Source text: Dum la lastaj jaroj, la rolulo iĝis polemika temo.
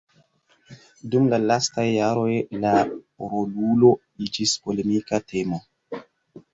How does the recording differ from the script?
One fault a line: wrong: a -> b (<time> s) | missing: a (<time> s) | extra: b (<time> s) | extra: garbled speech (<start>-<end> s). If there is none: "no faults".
no faults